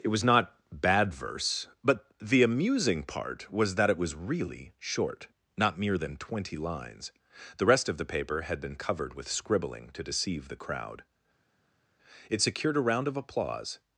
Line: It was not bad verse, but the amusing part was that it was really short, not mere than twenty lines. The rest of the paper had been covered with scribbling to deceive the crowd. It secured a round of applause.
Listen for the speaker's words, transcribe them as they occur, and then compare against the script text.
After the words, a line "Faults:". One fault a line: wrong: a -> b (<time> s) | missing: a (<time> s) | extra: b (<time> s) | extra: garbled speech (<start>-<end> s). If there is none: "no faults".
It was not bad verse, but the amusing part was that it was really short, not mere than twenty lines. The rest of the paper had been covered with scribbling to deceive the crowd. It secured a round of applause.
Faults:
no faults